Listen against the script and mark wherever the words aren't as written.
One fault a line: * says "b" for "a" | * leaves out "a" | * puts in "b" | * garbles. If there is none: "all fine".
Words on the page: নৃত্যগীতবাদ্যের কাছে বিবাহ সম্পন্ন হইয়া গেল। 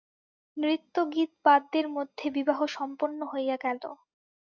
* says "মধ্যে" for "কাছে"